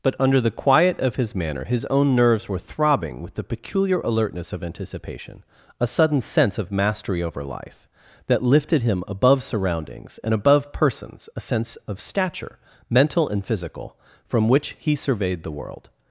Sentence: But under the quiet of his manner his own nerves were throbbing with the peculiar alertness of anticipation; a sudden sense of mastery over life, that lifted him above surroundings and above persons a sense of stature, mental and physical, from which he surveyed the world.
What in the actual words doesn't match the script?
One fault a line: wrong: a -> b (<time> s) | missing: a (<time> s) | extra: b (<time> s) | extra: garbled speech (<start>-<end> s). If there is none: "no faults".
no faults